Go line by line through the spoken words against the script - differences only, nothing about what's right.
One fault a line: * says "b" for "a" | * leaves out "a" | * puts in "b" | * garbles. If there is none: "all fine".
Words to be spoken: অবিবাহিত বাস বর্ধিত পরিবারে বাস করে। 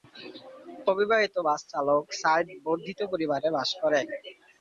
* puts in "চালক সাইদ"